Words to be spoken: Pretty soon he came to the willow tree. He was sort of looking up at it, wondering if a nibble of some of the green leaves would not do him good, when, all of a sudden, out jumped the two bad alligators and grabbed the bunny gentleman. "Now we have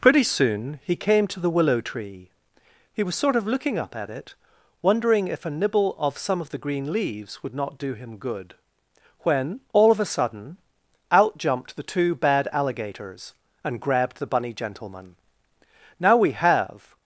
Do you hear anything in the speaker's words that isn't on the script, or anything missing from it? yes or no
no